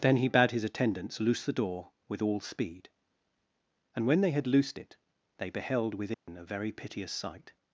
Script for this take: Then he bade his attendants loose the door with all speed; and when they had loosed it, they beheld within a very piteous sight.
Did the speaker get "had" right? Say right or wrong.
right